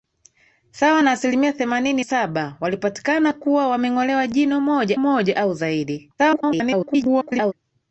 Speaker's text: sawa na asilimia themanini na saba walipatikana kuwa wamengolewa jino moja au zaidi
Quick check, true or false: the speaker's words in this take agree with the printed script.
false